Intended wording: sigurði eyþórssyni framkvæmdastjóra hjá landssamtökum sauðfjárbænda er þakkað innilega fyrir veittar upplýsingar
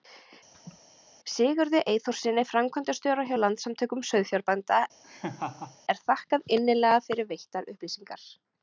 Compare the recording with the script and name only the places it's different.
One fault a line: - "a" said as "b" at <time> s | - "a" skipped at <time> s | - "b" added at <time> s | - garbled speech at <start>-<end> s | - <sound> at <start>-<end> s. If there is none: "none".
- laugh at 0.5-0.8 s
- laugh at 5.0-5.8 s